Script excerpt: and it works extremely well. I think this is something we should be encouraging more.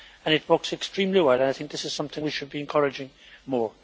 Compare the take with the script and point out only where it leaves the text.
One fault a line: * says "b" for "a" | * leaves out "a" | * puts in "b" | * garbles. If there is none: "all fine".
all fine